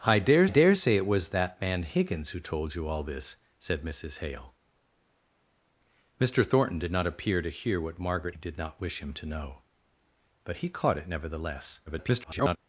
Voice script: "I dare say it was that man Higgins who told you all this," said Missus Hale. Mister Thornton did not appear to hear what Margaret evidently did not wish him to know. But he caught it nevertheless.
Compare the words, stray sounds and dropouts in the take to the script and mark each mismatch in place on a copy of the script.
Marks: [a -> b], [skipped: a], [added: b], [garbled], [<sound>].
"I dare [added: dare] say it was that man Higgins who told you all this," said Missus Hale. Mister Thornton did not appear to hear what Margaret [skipped: evidently] did not wish him to know. But he caught it nevertheless. [garbled]